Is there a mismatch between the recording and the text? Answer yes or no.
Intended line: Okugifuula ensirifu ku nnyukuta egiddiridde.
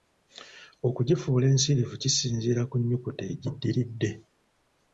yes